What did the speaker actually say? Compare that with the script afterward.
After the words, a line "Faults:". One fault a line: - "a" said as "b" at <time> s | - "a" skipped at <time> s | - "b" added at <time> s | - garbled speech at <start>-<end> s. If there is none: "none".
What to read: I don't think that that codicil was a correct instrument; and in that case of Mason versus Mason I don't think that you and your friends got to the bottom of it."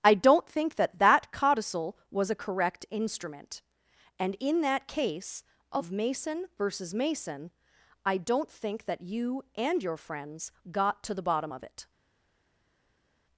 I don't think that that codicil was a correct instrument; and in that case of Mason versus Mason I don't think that you and your friends got to the bottom of it."
Faults:
none